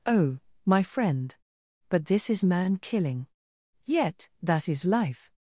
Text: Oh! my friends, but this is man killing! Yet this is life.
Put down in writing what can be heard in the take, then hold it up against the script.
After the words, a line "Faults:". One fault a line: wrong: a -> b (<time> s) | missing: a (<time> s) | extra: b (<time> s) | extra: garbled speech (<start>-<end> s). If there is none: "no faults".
Oh! my friend, but this is man killing! Yet that is life.
Faults:
wrong: friends -> friend (0.8 s)
wrong: this -> that (4.4 s)